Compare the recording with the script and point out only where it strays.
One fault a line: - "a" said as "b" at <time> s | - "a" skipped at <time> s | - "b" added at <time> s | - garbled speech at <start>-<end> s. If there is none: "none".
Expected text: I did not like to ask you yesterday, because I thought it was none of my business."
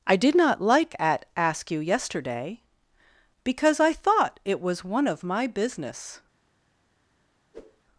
- "to" said as "at" at 1.0 s
- "none" said as "one" at 4.8 s